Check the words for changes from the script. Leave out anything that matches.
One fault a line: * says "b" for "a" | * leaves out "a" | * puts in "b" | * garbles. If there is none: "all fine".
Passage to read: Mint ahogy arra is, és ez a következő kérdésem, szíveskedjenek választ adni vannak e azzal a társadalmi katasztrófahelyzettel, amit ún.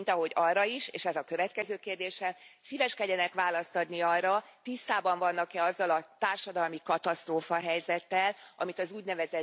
* puts in "arra tisztában"
* puts in "az"